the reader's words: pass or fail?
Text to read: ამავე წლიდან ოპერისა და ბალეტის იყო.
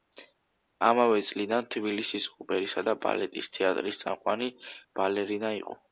fail